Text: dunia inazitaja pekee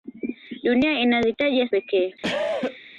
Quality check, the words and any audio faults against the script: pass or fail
fail